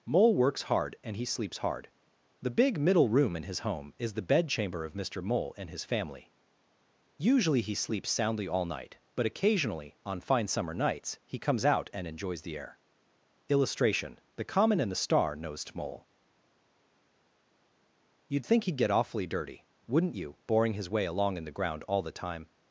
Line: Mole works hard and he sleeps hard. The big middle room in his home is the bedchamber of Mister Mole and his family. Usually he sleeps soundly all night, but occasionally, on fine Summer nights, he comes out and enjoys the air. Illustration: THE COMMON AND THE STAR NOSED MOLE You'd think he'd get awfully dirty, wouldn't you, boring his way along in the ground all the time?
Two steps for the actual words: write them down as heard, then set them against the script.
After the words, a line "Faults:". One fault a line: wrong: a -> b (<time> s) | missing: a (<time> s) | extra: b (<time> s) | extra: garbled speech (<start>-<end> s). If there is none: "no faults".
Mole works hard and he sleeps hard. The big middle room in his home is the bedchamber of Mister Mole and his family. Usually he sleeps soundly all night, but occasionally, on fine Summer nights, he comes out and enjoys the air. Illustration: THE COMMON AND THE STAR NOSED MOLE You'd think he'd get awfully dirty, wouldn't you, boring his way along in the ground all the time?
Faults:
no faults